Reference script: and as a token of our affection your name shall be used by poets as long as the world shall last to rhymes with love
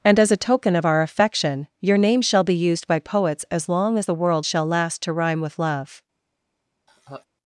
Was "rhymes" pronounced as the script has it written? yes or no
no